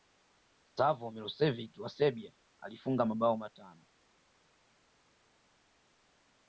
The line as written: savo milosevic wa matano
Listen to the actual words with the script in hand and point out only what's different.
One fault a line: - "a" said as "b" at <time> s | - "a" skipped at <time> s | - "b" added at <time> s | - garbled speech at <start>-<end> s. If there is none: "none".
- "serbia alifunga mabao" added at 1.9 s